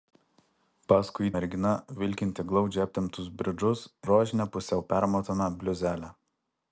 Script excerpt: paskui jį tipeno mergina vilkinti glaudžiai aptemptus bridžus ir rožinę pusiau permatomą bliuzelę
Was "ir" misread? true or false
true